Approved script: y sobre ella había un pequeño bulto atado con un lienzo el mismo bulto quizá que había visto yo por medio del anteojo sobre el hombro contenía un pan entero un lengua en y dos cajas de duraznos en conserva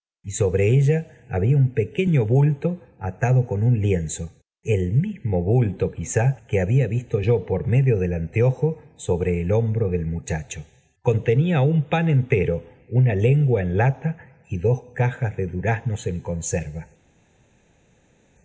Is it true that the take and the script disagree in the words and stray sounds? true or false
true